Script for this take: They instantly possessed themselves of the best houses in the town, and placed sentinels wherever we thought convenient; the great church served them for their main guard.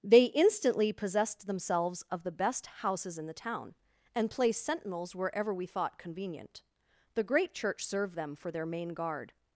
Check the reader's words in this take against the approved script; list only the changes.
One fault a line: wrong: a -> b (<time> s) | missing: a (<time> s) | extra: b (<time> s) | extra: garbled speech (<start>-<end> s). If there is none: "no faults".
no faults